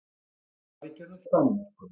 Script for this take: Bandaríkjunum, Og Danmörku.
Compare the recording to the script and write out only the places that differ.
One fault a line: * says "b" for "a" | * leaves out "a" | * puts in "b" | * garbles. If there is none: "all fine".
all fine